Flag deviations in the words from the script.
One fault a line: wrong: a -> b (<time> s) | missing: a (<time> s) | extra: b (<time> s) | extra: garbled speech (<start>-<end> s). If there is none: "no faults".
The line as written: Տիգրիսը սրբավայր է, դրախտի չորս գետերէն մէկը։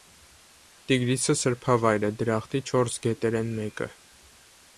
no faults